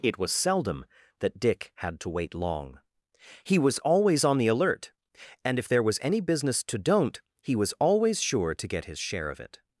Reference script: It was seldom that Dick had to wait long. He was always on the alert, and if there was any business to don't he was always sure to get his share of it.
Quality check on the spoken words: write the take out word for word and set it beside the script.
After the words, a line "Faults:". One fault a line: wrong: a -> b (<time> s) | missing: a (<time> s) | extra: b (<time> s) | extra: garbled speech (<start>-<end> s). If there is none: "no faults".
It was seldom that Dick had to wait long. He was always on the alert, and if there was any business to don't he was always sure to get his share of it.
Faults:
no faults